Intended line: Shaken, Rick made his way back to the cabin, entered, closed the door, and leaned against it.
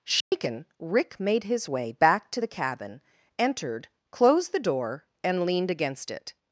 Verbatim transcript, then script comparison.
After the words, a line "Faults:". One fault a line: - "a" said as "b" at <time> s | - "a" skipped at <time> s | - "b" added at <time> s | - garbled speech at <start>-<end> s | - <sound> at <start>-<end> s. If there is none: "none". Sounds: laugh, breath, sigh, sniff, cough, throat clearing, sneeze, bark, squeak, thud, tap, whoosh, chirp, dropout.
Shaken, Rick made his way back to the cabin, entered, closed the door, and leaned against it.
Faults:
- dropout at 0.2-0.3 s